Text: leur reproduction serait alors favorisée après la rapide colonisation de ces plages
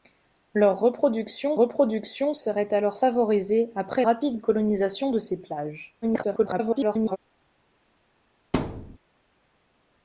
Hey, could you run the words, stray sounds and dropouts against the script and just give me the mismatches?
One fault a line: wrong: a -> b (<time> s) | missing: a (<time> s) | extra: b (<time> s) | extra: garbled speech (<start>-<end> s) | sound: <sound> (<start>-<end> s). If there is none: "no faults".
extra: reproduction (1.5 s)
missing: la (4.0 s)
extra: garbled speech (6.0-7.2 s)
sound: thud (8.5-9.0 s)